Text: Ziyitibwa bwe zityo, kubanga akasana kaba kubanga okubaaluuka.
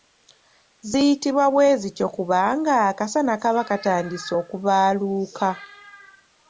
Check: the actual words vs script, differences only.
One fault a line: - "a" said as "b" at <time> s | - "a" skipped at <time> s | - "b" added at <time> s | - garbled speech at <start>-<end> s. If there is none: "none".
- "kubanga" said as "katandise" at 3.7 s